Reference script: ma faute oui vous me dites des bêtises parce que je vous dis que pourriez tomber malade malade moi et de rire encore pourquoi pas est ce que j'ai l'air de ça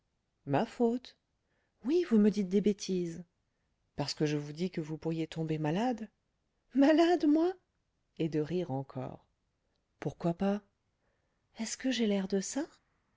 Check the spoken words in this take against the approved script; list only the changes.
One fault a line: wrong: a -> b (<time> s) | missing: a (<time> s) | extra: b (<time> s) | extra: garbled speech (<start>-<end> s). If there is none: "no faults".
extra: vous (4.8 s)